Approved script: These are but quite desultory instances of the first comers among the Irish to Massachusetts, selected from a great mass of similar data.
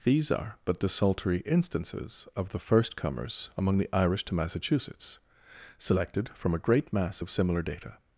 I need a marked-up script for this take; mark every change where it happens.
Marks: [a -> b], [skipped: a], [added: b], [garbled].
These are but [skipped: quite] desultory instances of the first comers among the Irish to Massachusetts, selected from a great mass of similar data.